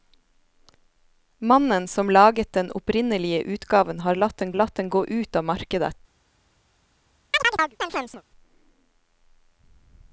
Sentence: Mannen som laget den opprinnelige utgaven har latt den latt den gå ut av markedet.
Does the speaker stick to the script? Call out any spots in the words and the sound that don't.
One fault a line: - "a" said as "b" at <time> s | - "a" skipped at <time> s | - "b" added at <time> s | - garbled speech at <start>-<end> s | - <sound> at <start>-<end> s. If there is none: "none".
- chirp at 7.3-8.2 s